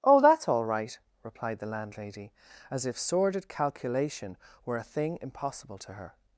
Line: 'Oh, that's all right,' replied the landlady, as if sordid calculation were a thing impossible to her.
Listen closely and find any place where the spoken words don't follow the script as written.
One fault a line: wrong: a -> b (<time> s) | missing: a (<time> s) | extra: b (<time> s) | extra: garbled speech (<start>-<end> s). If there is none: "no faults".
no faults